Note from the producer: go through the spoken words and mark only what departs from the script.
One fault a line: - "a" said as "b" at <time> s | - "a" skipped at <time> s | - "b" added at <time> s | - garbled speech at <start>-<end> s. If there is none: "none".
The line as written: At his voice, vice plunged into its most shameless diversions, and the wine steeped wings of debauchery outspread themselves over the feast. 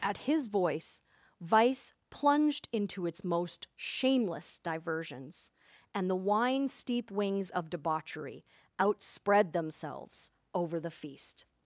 - "steeped" said as "steep" at 6.7 s